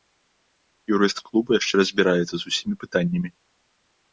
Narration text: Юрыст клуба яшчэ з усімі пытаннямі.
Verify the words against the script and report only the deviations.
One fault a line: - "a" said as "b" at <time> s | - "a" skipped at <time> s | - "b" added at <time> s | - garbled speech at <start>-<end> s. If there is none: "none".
- "разбіраецца" added at 1.8 s